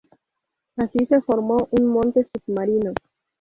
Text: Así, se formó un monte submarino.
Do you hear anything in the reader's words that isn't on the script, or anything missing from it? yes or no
no